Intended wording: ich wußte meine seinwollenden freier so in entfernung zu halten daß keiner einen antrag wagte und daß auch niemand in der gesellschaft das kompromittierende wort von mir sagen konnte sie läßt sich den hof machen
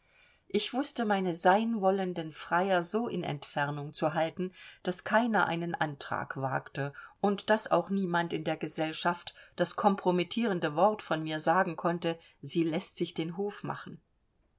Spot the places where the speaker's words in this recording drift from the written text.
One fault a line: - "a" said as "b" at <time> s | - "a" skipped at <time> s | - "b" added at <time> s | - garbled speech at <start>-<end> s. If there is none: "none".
none